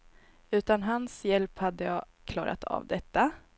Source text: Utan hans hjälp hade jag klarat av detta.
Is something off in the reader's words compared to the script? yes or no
no